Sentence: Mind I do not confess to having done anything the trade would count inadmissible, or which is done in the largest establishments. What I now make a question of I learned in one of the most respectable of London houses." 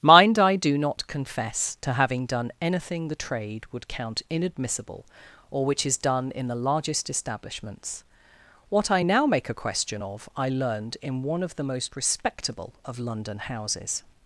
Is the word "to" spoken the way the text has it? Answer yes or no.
yes